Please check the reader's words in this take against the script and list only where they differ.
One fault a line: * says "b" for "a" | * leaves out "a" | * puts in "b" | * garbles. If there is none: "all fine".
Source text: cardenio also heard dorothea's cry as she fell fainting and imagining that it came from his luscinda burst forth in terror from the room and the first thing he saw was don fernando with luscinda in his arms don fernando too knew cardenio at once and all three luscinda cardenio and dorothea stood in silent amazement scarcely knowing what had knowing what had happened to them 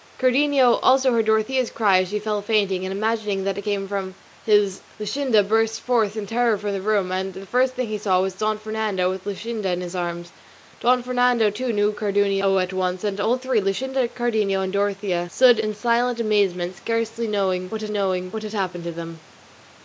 all fine